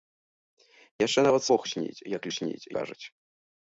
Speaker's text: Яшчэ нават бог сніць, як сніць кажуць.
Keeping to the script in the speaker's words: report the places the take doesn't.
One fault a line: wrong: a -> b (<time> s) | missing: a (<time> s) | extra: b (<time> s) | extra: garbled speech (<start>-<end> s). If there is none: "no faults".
no faults